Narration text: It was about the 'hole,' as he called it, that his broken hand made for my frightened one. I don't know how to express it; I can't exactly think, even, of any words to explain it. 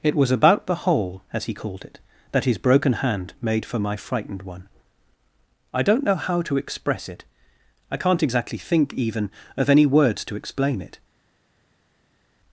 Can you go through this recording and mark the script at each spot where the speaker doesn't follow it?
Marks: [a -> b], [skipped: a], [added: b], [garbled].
It was about the 'hole,' as he called it, that his broken hand made for my frightened one. I don't know how to express it; I can't exactly think, even, of any words to explain it.